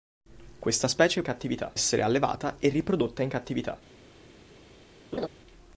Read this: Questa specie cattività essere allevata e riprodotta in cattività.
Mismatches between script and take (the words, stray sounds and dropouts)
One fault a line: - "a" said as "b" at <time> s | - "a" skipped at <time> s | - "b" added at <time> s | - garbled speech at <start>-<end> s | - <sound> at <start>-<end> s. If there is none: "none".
- laugh at 5.1-5.3 s